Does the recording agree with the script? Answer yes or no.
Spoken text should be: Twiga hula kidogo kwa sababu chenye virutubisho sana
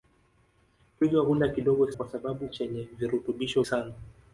yes